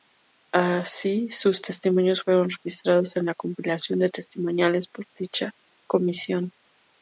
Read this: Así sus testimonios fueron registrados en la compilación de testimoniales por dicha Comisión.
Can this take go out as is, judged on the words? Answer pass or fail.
pass